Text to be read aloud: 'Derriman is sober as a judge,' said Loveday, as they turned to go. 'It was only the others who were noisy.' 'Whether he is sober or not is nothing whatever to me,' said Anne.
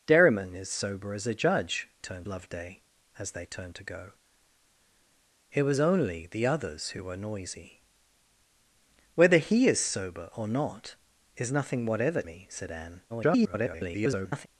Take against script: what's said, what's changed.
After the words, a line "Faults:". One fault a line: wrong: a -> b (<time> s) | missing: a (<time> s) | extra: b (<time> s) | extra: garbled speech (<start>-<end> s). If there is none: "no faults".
'Derriman is sober as a judge,' turned Loveday, as they turned to go. 'It was only the others who were noisy.' 'Whether he is sober or not is nothing whatever me,' said Anne. [garbled]
Faults:
wrong: said -> turned (2.0 s)
missing: to (12.2 s)
extra: garbled speech (13.1-14.5 s)